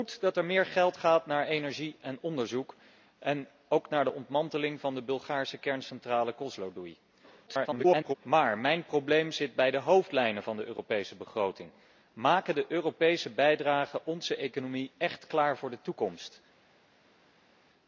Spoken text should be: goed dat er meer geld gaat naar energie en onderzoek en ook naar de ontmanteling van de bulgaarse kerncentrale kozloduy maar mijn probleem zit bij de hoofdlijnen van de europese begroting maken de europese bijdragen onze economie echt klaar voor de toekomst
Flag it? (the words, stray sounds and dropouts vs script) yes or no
yes